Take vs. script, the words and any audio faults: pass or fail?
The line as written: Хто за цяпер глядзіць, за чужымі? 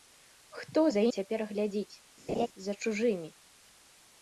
fail